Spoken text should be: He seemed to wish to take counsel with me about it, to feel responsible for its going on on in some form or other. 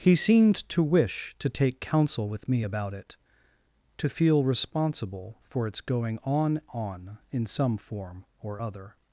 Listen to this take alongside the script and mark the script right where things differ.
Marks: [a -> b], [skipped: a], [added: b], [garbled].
He seemed to wish to take counsel with me about it, to feel responsible for its going on on in some form or other.